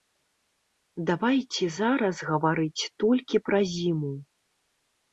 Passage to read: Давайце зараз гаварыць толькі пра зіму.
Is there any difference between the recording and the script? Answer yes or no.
no